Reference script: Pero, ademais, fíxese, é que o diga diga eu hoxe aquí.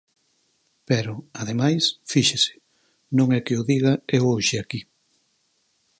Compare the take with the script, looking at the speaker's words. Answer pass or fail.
fail